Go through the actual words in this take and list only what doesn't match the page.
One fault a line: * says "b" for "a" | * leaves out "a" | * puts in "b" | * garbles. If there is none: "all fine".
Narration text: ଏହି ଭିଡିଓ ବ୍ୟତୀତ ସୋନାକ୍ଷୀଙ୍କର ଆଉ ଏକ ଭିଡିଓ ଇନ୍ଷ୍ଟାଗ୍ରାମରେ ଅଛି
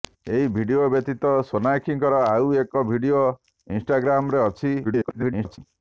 * garbles